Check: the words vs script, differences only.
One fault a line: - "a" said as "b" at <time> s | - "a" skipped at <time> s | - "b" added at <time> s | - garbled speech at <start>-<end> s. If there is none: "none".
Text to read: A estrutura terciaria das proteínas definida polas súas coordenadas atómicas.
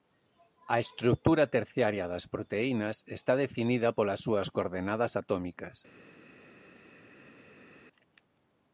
- "está" added at 3.2 s